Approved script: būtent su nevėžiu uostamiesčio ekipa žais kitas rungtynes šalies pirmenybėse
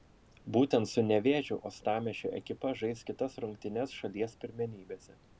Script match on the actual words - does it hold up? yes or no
yes